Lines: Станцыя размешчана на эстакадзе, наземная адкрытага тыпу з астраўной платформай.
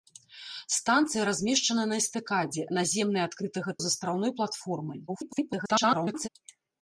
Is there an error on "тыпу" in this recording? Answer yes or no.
yes